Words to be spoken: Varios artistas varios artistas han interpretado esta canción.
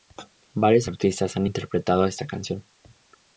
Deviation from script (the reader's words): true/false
true